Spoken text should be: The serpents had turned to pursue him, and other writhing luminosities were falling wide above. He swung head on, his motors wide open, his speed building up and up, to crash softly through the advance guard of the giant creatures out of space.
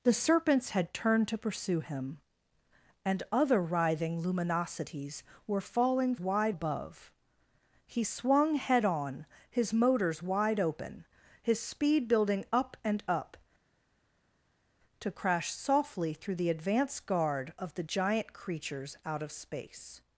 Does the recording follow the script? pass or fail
pass